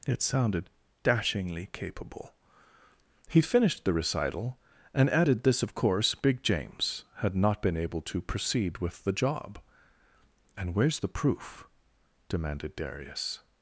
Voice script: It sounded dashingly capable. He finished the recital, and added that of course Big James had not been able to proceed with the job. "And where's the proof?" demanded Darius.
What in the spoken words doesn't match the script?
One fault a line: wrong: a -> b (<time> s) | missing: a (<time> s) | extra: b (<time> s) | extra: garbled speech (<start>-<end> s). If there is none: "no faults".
wrong: that -> this (5.4 s)